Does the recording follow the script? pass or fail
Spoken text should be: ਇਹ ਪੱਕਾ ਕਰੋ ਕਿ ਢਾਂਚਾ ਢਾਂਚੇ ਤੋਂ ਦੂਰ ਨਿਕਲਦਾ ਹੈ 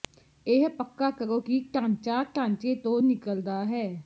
fail